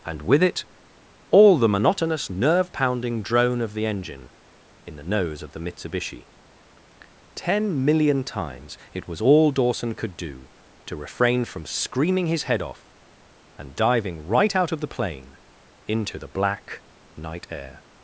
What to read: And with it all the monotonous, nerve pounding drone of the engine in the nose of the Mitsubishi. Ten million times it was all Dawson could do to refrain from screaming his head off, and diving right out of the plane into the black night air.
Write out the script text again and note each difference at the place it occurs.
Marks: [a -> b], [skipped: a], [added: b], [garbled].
And with it all the monotonous, nerve pounding drone of the engine in the nose of the Mitsubishi. Ten million times it was all Dawson could do to refrain from screaming his head off, and diving right out of the plane into the black night air.